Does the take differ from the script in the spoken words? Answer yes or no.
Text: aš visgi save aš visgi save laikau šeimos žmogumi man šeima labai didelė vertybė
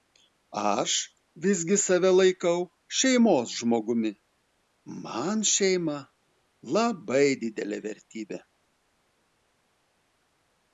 yes